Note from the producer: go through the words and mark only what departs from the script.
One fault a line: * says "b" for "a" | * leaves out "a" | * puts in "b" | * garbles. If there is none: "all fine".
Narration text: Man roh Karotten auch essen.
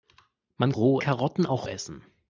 all fine